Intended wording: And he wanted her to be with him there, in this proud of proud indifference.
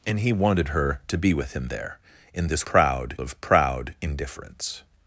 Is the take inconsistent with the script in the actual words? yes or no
no